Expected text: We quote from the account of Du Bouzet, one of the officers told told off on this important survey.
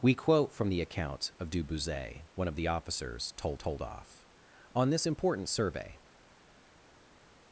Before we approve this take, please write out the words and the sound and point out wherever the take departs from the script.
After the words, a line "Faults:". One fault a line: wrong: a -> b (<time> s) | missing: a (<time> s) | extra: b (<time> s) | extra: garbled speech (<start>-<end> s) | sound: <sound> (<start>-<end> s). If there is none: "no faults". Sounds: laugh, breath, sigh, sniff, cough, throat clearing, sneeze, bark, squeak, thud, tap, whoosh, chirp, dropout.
We quote from the account of Du Bouzet, one of the officers told told off on this important survey.
Faults:
no faults